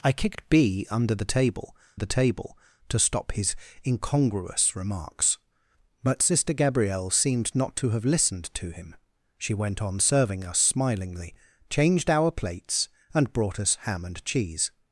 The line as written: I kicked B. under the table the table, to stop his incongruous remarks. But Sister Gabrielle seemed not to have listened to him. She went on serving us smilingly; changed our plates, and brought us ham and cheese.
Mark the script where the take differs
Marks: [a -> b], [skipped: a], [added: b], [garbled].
I kicked B. under the table the table, to stop his incongruous remarks. But Sister Gabrielle seemed not to have listened to him. She went on serving us smilingly; changed our plates, and brought us ham and cheese.